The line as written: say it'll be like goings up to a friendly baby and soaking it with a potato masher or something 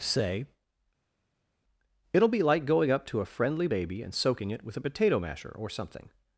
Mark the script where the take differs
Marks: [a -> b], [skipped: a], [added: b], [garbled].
say it'll be like [goings -> going] up to a friendly baby and soaking it with a potato masher or something